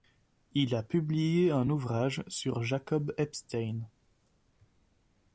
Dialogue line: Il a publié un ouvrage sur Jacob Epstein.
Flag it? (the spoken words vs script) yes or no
no